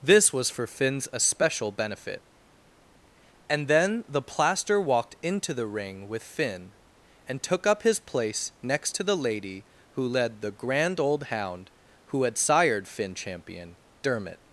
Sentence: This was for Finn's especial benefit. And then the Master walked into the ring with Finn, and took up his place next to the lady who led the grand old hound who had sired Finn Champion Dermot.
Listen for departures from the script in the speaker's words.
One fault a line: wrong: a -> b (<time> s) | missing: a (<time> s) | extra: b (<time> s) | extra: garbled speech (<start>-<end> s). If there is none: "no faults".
wrong: Master -> Plaster (4.2 s)